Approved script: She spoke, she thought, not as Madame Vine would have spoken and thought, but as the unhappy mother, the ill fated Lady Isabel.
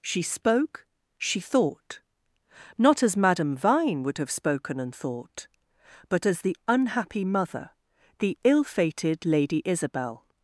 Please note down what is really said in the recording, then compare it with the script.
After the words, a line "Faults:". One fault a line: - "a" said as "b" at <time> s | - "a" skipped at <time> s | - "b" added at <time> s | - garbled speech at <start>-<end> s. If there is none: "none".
She spoke, she thought, not as Madame Vine would have spoken and thought, but as the unhappy mother, the ill fated Lady Isabel.
Faults:
none